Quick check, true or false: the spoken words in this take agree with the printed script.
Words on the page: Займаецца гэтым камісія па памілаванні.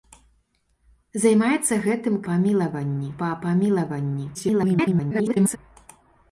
false